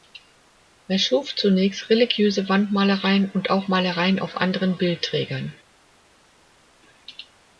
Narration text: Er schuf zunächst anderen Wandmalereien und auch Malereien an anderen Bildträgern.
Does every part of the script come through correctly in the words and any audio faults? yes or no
no